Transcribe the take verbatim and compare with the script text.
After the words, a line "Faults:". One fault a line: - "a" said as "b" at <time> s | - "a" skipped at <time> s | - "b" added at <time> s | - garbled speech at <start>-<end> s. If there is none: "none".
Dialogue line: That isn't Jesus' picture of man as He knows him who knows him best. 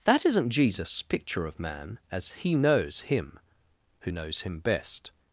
That isn't Jesus' picture of man as He knows him who knows him best.
Faults:
none